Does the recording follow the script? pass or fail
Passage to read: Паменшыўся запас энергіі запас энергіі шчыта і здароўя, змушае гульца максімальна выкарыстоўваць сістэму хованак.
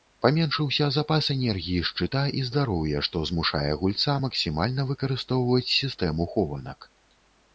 fail